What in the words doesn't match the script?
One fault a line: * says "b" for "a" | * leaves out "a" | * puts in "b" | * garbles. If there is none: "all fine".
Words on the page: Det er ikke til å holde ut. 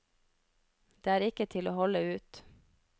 all fine